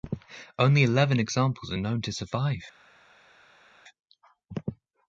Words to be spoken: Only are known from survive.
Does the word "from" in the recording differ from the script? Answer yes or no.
yes